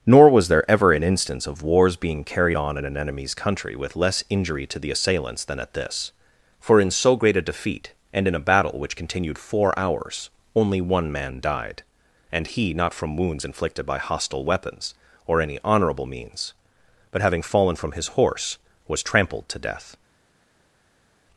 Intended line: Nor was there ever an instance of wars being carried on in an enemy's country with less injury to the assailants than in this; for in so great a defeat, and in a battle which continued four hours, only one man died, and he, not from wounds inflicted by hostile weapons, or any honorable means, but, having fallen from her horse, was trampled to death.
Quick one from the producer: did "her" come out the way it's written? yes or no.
no